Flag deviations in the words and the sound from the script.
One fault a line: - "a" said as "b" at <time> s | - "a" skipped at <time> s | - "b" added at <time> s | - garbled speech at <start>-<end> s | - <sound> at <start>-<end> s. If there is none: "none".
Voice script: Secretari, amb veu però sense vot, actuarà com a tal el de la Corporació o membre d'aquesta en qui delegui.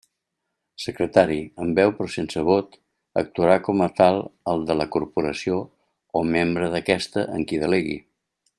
none